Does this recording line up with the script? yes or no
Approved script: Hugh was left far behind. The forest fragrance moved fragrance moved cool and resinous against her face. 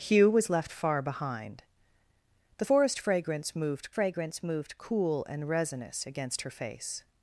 yes